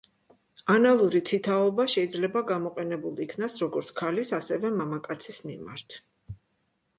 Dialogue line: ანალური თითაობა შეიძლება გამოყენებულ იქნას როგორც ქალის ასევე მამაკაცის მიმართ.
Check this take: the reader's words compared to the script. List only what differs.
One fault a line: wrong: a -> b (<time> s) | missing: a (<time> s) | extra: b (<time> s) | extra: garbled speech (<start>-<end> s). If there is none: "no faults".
no faults